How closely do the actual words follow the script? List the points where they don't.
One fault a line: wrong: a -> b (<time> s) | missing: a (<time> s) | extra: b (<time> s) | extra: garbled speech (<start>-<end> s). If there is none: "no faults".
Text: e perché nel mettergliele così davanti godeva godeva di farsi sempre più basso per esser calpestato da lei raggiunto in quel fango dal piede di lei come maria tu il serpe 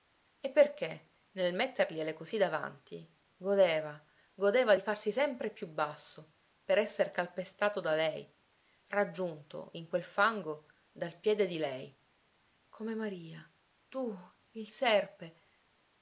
no faults